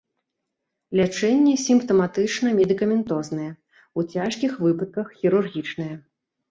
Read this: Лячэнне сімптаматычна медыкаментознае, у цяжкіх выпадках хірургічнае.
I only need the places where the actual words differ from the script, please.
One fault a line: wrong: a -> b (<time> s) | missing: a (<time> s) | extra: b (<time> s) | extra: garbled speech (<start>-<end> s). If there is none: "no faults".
no faults